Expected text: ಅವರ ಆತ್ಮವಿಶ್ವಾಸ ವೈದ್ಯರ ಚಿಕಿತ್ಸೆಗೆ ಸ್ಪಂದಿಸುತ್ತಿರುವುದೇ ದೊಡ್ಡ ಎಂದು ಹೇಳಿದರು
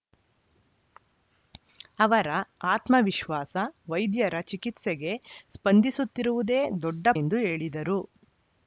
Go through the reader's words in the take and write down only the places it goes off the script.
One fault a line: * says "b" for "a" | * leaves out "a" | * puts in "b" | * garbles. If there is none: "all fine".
all fine